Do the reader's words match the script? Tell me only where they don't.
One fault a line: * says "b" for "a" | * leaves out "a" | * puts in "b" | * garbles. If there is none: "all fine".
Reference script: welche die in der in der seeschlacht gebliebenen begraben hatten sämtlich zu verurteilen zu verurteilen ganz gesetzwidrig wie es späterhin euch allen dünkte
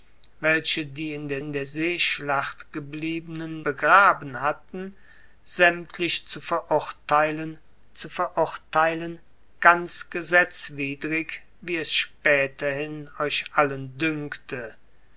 all fine